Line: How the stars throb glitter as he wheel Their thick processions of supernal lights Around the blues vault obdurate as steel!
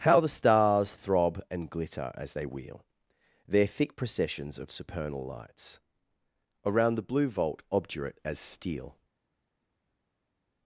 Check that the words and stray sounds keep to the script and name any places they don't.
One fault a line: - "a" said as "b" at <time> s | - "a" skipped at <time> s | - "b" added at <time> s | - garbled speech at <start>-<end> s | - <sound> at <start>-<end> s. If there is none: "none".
- "and" added at 1.5 s
- "he" said as "they" at 2.3 s
- "blues" said as "blue" at 7.0 s